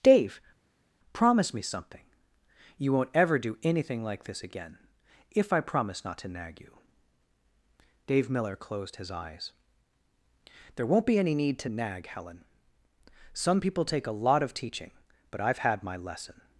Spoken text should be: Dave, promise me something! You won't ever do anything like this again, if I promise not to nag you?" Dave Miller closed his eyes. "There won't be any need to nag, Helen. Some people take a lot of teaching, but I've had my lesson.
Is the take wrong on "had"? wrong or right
right